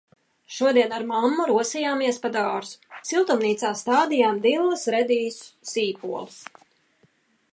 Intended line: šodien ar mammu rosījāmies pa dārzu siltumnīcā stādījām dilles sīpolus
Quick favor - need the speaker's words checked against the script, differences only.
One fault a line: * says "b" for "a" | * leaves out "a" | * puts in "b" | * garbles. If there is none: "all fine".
* puts in "redīsus"